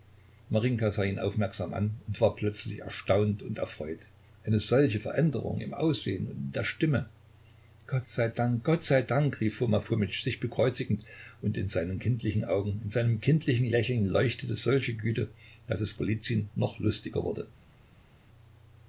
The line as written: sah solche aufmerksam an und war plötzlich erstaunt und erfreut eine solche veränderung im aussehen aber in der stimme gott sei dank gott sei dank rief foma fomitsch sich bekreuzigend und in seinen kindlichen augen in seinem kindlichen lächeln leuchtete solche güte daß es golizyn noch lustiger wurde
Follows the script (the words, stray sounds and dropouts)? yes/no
no